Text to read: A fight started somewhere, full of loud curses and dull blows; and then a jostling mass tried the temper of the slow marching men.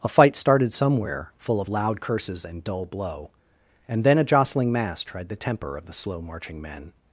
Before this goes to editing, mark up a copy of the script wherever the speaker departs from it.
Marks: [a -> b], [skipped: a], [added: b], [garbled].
A fight started somewhere, full of loud curses and dull [blows; -> blow] and then a jostling mass tried the temper of the slow marching men.